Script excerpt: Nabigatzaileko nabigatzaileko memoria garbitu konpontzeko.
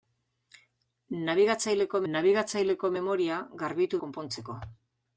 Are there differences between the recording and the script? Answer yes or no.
no